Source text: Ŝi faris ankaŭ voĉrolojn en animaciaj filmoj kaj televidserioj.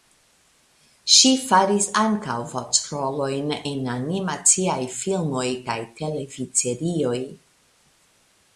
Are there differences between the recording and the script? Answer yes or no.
no